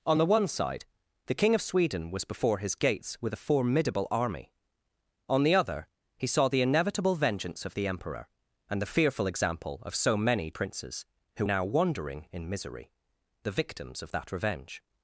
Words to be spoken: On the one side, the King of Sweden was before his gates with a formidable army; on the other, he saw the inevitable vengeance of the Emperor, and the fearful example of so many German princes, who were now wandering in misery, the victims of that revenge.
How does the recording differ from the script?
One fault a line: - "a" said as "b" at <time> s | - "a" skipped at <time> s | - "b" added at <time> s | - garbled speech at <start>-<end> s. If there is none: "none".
- "German" skipped at 10.5 s
- "were" skipped at 11.5 s